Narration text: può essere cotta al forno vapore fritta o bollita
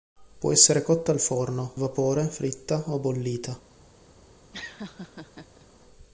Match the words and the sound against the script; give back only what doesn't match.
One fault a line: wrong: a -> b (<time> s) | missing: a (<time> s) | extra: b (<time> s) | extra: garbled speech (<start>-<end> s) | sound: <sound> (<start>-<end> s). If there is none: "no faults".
sound: laugh (4.5-5.7 s)